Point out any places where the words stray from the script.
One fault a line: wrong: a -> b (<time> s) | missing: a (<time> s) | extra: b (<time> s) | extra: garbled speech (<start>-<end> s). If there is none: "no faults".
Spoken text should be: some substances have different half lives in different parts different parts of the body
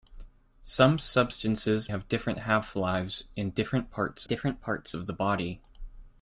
no faults